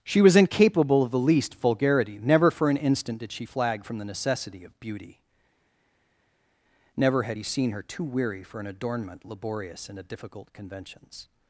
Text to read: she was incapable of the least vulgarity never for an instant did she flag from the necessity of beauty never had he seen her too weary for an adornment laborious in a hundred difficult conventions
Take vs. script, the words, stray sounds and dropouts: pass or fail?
fail